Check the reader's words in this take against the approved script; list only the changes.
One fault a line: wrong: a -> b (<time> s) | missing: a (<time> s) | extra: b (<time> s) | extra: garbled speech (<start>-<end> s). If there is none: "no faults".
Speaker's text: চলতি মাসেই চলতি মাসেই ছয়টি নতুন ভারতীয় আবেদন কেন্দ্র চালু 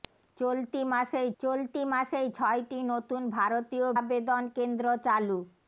no faults